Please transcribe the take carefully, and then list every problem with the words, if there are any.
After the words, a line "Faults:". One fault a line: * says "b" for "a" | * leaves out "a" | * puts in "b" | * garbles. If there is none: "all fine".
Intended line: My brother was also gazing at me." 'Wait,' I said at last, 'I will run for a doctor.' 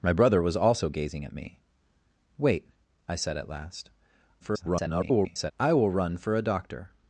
My brother was also gazing at me." 'Wait,' I said at last, [garbled] 'I will run for a doctor.'
Faults:
* garbles